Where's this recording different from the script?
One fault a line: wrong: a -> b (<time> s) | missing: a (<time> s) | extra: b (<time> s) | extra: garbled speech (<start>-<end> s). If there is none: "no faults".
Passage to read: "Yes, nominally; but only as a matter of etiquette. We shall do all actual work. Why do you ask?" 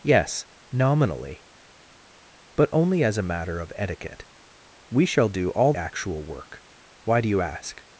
no faults